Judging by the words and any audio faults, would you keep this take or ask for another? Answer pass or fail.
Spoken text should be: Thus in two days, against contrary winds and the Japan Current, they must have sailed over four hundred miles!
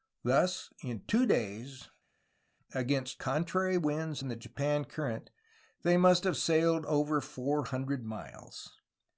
pass